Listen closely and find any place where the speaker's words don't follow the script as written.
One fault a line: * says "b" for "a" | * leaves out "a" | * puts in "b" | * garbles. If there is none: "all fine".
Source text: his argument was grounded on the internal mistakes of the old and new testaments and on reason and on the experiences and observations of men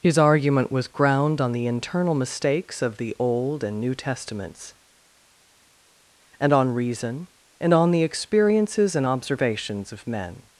* says "ground" for "grounded"